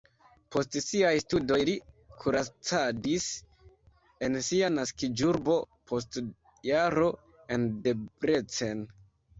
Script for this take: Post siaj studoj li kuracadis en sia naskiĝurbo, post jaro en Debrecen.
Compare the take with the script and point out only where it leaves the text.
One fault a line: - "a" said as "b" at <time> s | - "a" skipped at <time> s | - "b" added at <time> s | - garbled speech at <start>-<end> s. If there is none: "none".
none